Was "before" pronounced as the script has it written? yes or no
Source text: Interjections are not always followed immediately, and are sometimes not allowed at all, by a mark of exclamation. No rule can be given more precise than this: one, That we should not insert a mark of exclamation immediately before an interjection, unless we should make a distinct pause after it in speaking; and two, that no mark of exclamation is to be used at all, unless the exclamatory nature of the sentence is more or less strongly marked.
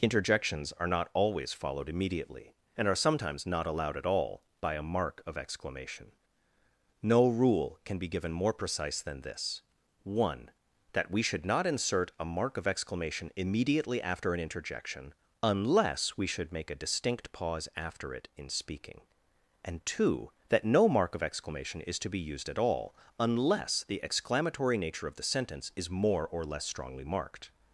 no